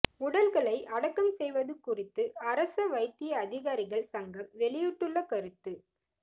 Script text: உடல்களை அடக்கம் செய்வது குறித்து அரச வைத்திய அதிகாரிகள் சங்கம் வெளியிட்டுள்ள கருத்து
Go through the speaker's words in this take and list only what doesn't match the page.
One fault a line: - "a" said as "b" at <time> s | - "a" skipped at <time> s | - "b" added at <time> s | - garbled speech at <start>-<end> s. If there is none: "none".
none